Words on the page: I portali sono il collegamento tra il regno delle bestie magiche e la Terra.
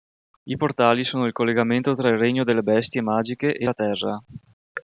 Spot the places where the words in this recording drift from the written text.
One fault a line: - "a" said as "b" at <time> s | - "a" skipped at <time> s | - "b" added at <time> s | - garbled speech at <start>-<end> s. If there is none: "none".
none